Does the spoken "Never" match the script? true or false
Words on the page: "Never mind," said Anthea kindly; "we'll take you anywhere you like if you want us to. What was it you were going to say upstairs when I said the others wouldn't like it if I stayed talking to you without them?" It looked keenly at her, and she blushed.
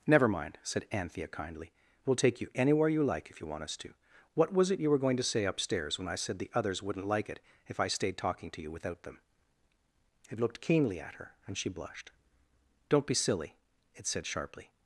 true